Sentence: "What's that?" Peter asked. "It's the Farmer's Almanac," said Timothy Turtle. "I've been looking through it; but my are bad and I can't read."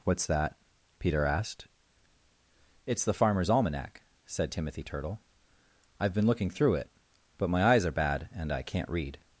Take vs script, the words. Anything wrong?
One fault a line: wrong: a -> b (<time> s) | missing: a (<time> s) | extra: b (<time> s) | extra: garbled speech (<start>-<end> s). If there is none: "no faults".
extra: eyes (7.6 s)